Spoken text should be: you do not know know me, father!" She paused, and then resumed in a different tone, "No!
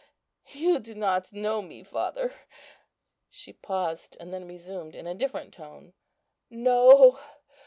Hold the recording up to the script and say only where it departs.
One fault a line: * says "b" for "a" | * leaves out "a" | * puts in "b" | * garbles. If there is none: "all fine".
* leaves out "know"